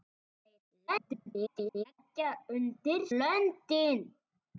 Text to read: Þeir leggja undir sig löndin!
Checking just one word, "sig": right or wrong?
wrong